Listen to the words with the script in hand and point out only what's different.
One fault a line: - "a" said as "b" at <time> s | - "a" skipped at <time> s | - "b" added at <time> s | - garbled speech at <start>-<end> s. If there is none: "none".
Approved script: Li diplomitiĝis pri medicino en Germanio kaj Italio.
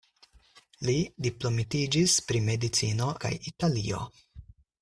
- "en Germanio" skipped at 3.1 s